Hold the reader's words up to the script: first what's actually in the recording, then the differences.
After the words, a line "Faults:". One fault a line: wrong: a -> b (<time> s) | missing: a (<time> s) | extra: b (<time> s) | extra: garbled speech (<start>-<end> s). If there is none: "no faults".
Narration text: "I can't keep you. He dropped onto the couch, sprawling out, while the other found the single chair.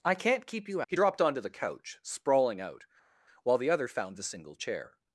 "I can't keep you. He dropped onto the couch, sprawling out, while the other found the single chair.
Faults:
no faults